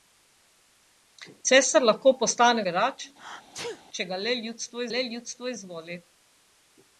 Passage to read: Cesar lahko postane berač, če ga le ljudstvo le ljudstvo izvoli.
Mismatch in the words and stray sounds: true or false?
true